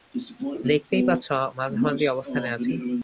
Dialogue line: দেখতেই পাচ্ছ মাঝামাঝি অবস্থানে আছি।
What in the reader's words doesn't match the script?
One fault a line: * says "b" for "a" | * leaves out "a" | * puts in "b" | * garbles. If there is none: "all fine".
all fine